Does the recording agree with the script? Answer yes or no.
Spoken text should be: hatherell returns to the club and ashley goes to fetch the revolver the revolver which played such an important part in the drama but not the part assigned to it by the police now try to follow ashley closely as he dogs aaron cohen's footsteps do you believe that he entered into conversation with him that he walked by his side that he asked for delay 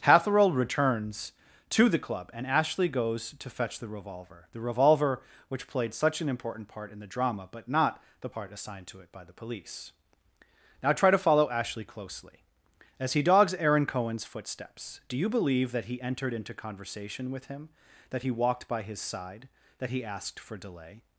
yes